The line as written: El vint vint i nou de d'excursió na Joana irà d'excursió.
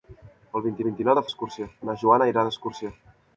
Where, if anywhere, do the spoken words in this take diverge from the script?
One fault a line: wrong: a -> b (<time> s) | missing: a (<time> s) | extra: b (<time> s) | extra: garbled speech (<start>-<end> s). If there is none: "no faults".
no faults